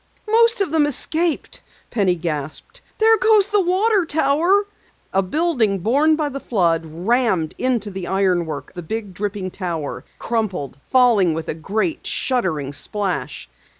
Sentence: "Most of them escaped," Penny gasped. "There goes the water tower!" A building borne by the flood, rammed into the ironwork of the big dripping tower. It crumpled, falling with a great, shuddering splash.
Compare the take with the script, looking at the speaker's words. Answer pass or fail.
fail